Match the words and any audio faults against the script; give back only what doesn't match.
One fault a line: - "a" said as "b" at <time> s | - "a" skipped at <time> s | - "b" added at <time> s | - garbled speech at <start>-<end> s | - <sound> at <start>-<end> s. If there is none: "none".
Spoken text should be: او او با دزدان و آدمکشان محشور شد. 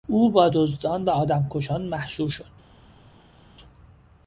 - "او" skipped at 0.3 s